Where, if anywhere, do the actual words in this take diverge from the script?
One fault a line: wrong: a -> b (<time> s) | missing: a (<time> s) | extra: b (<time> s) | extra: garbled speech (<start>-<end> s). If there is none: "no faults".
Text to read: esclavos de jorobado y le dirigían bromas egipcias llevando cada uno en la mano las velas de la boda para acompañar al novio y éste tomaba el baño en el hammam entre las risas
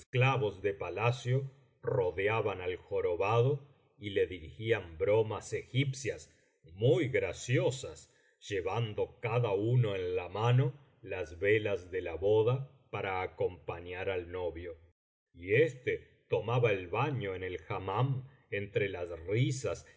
extra: palacio rodeaban al (0.7 s)
extra: muy graciosas (6.7 s)